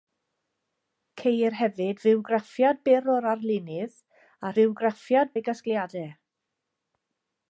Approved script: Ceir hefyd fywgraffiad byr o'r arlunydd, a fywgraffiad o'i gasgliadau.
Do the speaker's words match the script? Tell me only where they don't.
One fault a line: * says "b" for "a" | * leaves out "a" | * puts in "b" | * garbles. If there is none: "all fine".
all fine